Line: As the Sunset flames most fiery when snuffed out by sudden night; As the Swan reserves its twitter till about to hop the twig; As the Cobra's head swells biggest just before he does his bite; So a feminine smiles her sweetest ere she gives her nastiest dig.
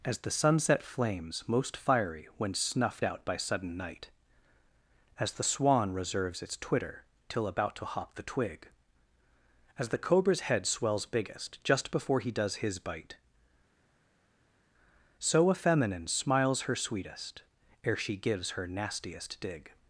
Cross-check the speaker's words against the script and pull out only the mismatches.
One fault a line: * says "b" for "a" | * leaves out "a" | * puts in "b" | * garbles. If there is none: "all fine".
all fine